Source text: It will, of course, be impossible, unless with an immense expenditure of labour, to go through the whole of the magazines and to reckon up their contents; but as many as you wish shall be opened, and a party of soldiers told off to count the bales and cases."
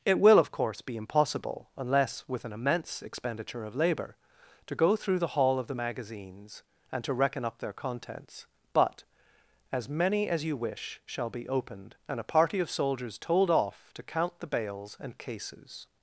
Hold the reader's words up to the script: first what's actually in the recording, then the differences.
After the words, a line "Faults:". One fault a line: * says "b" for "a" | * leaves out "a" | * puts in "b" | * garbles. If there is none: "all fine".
It will, of course, be impossible, unless with an immense expenditure of labour, to go through the hall of the magazines and to reckon up their contents; but as many as you wish shall be opened, and a party of soldiers told off to count the bales and cases."
Faults:
* says "hall" for "whole"